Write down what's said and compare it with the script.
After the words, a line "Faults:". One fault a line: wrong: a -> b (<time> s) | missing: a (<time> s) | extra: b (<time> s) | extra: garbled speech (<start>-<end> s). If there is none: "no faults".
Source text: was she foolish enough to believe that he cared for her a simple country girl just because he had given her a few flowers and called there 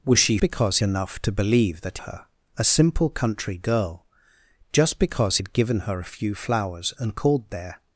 was she because enough to believe that her a simple country girl just because had given her a few flowers and called there
Faults:
wrong: foolish -> because (0.4 s)
missing: he cared for (2.0 s)
missing: he (5.4 s)